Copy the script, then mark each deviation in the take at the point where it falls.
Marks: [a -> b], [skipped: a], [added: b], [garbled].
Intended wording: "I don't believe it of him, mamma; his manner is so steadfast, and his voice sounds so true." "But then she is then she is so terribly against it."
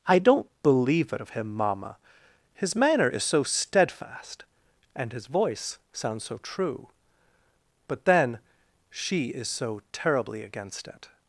"I don't believe it of him, mamma; his manner is so steadfast, and his voice sounds so true." "But then she is [skipped: then she is] so terribly against it."